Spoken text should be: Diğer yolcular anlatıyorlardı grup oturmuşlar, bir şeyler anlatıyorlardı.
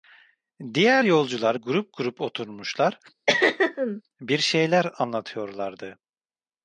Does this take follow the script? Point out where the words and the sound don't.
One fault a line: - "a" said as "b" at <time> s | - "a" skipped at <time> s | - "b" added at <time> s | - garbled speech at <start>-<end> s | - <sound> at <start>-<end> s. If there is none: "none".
- "anlatıyorlardı" said as "grup" at 1.5 s
- throat clearing at 3.3-4.0 s